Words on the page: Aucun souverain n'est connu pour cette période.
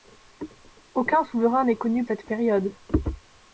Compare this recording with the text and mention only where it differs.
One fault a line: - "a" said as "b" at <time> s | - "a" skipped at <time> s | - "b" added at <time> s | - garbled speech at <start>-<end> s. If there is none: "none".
- "pour" skipped at 2.0 s